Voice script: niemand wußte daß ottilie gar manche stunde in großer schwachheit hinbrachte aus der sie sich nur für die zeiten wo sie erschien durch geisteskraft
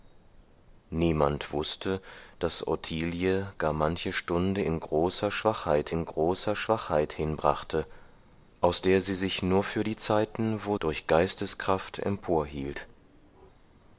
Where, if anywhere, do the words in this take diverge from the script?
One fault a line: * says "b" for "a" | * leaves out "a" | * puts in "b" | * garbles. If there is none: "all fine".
* puts in "in großer schwachheit"
* leaves out "sie erschien"